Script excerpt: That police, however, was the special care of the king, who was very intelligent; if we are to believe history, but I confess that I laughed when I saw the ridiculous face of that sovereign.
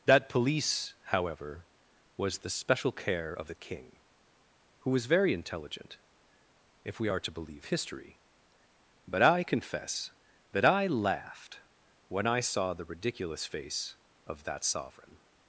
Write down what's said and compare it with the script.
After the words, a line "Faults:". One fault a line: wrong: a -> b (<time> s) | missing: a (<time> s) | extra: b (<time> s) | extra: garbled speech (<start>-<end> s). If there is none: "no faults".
That police, however, was the special care of the king, who was very intelligent; if we are to believe history, but I confess that I laughed when I saw the ridiculous face of that sovereign.
Faults:
no faults